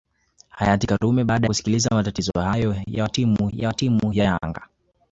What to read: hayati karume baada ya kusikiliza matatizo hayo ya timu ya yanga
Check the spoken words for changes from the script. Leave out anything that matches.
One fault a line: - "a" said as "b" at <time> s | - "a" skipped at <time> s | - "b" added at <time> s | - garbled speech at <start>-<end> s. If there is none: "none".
- "ya" skipped at 1.5 s
- "timu ya" added at 3.7 s